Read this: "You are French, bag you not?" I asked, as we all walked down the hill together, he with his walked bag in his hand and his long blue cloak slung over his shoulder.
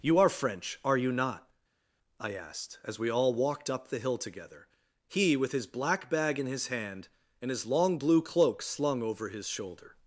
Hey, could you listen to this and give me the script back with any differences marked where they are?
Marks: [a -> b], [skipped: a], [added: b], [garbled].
"You are French, [bag -> are] you not?" I asked, as we all walked [down -> up] the hill together, he with his [walked -> black] bag in his hand and his long blue cloak slung over his shoulder.